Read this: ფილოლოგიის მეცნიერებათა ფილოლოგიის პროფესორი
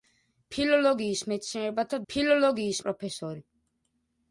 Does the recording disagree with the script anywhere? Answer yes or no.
no